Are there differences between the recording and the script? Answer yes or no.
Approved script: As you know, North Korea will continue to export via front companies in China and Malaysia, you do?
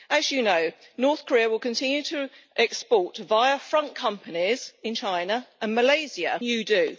no